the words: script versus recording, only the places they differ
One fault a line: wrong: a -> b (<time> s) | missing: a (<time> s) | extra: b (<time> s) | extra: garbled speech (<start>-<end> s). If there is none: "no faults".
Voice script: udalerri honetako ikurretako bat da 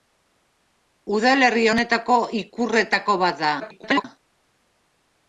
extra: garbled speech (3.6-4.0 s)